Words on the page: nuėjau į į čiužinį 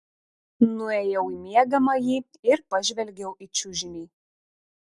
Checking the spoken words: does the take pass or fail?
fail